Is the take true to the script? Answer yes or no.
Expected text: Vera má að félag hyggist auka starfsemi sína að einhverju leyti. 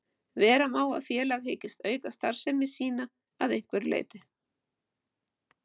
yes